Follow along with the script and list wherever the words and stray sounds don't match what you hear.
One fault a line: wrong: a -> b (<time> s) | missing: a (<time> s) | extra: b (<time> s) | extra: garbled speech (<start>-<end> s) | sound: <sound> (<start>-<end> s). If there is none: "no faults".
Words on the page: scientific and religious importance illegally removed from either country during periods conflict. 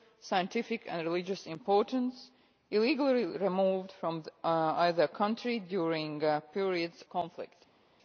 no faults